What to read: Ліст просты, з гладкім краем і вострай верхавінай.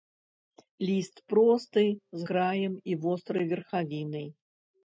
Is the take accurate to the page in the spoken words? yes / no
no